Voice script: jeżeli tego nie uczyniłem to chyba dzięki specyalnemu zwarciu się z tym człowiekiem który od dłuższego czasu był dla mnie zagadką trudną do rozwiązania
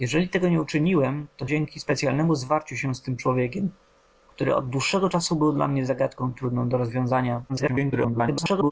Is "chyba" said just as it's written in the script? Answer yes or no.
no